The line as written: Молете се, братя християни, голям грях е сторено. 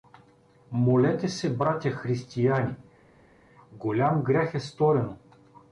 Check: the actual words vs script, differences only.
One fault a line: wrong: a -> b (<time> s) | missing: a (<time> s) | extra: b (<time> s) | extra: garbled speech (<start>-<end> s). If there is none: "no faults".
no faults